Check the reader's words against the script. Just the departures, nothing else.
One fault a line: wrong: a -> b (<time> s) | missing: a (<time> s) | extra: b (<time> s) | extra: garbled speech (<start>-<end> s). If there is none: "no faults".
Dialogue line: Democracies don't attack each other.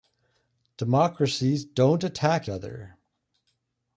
missing: each (2.5 s)